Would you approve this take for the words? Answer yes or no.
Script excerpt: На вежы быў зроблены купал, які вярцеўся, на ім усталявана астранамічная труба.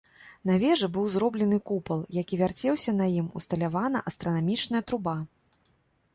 yes